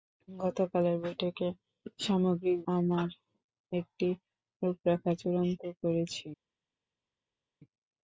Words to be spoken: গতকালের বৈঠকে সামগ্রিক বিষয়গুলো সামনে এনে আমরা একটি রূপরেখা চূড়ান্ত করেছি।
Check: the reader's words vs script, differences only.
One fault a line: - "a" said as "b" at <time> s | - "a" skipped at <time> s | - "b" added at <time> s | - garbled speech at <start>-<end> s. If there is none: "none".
- "বিষয়গুলো সামনে এনে" skipped at 2.6 s